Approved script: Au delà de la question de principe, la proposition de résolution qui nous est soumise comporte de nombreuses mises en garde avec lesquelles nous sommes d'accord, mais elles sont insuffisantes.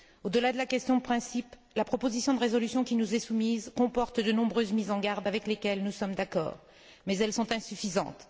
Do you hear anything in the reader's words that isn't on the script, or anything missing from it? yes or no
no